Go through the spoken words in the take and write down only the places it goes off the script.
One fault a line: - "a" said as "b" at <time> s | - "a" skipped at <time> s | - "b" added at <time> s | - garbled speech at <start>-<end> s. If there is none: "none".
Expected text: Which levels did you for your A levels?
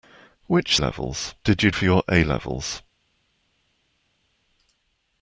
none